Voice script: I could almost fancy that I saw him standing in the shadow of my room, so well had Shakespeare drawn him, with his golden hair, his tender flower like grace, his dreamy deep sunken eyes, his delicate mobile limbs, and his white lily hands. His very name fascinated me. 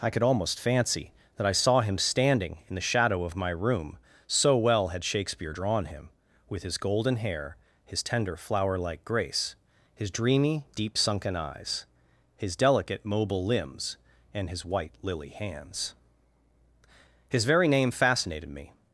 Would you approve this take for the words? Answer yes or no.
yes